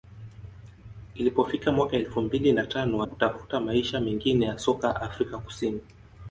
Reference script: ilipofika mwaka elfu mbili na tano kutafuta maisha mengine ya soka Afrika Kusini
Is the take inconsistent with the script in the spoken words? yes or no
no